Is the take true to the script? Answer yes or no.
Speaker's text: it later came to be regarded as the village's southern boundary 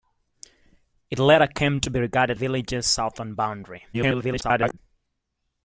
no